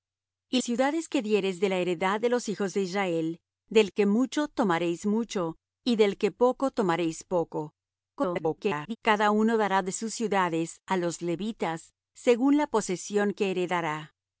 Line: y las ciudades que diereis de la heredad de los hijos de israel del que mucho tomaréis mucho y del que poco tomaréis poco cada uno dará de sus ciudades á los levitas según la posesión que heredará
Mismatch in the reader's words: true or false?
true